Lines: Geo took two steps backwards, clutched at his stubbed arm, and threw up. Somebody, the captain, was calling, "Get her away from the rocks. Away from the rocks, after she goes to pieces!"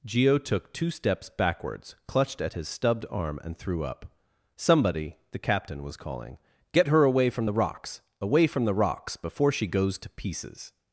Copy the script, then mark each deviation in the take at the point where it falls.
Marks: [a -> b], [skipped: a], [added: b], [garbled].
Geo took two steps backwards, clutched at his stubbed arm, and threw up. Somebody, the captain, was calling, "Get her away from the rocks. Away from the rocks, [after -> before] she goes to pieces!"